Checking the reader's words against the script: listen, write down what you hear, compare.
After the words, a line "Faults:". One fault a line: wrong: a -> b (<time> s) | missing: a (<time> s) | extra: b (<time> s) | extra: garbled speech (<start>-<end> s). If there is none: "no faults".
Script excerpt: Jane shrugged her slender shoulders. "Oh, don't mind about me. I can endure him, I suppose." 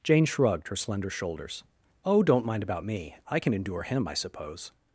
Jane shrugged her slender shoulders. "Oh, don't mind about me. I can endure him, I suppose."
Faults:
no faults